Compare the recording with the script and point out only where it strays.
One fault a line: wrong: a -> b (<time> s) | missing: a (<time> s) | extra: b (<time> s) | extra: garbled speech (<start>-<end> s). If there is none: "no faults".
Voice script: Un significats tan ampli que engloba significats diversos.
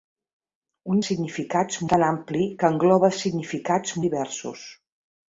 no faults